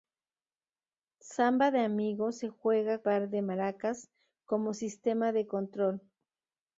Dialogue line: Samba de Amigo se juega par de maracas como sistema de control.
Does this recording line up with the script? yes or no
yes